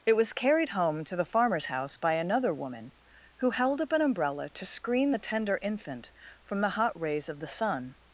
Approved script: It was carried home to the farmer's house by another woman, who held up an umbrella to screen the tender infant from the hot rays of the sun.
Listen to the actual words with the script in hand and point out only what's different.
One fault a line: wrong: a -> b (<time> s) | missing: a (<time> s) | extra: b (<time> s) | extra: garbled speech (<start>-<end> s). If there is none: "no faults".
no faults